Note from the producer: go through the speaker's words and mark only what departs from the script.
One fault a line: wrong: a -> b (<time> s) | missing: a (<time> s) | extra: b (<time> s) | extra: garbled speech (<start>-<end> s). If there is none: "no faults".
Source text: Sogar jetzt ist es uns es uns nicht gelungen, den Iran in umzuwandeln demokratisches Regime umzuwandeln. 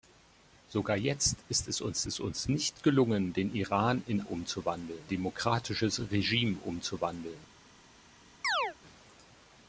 no faults